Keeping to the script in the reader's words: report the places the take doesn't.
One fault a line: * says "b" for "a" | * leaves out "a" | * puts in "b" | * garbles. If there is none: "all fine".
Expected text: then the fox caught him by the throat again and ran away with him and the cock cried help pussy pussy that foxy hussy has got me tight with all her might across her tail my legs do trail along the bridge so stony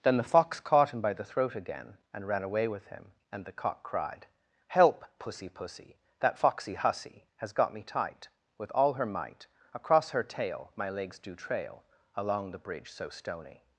all fine